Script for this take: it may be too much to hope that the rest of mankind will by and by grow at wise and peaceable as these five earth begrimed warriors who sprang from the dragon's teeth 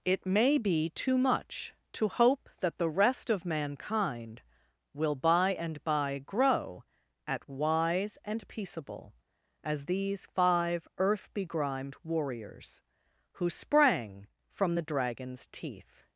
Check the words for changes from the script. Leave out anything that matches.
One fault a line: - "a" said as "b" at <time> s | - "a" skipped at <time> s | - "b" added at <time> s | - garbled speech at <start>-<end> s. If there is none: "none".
none